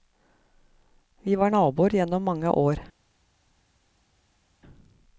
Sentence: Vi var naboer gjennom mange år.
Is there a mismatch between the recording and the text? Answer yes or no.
no